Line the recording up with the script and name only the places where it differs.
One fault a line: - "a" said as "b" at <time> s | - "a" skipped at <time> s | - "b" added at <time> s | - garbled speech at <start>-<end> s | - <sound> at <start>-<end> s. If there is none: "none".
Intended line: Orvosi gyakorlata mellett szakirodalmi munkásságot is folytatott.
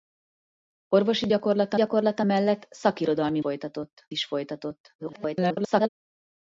- "gyakorlata" added at 1.7 s
- "munkásságot" said as "folytatott" at 3.4 s
- garbled speech at 5.0-5.9 s